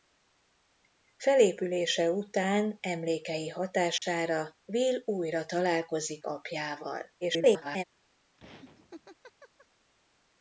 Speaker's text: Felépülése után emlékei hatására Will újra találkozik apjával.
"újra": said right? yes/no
yes